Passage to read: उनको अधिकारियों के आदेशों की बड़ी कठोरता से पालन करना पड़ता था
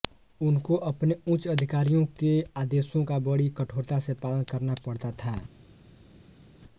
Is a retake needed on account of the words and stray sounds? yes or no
yes